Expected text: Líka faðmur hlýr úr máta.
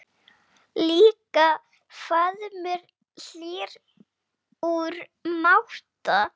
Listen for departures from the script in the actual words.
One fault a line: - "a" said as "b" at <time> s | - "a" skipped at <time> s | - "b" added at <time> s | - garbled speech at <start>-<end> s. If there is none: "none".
none